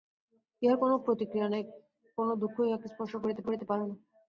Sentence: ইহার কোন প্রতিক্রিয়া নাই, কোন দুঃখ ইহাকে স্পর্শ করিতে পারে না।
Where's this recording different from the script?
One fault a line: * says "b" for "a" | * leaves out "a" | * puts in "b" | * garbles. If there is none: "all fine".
* puts in "করিতে"